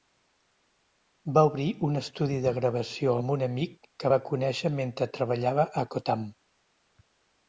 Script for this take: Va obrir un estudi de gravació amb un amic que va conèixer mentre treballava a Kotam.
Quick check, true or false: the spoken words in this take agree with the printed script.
true